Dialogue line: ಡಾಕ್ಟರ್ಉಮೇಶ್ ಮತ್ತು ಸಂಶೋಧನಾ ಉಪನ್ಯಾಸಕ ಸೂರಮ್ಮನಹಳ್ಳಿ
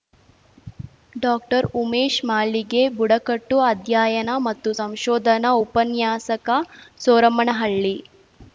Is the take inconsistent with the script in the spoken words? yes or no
yes